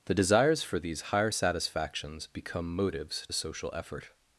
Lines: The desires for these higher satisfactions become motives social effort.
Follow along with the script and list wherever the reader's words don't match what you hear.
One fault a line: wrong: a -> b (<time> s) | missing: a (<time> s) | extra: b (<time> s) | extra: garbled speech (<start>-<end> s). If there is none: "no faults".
no faults